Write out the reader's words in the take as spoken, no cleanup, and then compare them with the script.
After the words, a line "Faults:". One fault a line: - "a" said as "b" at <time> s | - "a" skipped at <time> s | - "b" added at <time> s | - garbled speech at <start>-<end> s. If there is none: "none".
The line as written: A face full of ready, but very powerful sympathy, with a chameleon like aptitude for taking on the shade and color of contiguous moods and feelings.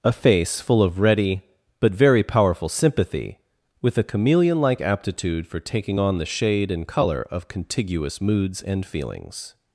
A face full of ready, but very powerful sympathy, with a chameleon like aptitude for taking on the shade and color of contiguous moods and feelings.
Faults:
none